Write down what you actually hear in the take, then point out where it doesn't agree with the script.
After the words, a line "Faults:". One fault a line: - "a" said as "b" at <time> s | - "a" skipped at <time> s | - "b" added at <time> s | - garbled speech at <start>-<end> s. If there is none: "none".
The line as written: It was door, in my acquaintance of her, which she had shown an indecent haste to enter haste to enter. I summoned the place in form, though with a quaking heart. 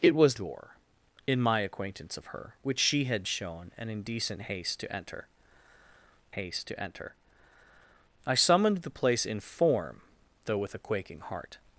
It was door, in my acquaintance of her, which she had shown an indecent haste to enter haste to enter. I summoned the place in form, though with a quaking heart.
Faults:
none